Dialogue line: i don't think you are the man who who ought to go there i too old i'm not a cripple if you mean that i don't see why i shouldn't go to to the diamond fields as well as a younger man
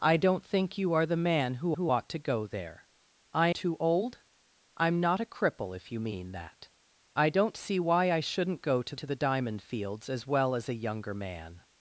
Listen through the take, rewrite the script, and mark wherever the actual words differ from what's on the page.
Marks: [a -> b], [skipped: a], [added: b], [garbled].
i don't think you are the man who who ought to go there i too old i'm not a cripple if you mean that i don't see why i shouldn't go to to the diamond fields as well as a younger man